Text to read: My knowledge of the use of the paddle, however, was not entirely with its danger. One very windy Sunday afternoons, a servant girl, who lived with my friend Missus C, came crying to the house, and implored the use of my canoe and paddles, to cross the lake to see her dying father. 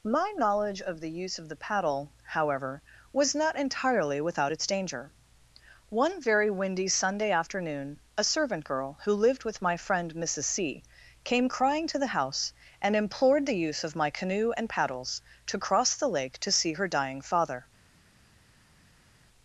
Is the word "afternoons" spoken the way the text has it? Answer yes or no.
no